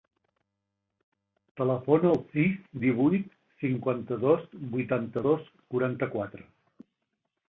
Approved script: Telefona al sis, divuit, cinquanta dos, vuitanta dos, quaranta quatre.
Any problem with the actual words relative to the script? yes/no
no